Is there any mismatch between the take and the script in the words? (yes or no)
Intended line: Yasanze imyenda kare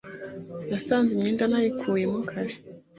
yes